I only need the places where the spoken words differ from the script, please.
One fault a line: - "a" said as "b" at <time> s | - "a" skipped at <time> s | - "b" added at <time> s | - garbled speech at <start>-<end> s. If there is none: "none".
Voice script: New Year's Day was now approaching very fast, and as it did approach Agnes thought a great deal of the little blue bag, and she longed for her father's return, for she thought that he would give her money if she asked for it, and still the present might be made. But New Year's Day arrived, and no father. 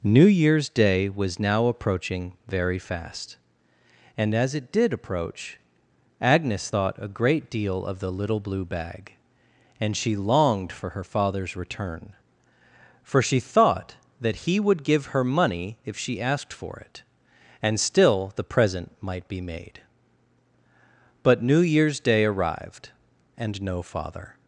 none